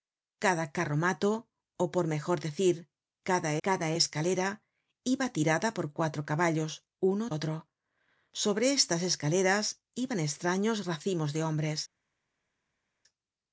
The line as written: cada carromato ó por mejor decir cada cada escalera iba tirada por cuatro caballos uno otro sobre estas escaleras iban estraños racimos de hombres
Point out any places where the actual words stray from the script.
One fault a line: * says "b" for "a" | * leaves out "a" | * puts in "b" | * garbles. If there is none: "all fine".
all fine